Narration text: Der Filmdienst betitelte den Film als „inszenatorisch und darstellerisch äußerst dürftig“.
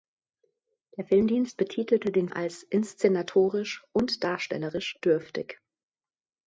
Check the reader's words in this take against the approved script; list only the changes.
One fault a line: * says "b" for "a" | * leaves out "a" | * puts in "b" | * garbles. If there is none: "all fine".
* leaves out "Film"
* leaves out "äußerst"